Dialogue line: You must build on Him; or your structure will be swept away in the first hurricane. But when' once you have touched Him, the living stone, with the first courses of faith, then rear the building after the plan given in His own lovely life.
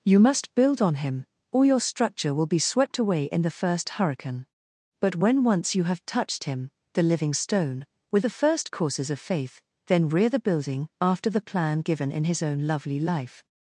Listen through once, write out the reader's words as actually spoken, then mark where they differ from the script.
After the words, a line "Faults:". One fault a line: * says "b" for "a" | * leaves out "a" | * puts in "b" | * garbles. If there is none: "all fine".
You must build on Him; or your structure will be swept away in the first hurricane. But when' once you have touched Him, the living stone, with the first courses of faith, then rear the building after the plan given in His own lovely life.
Faults:
all fine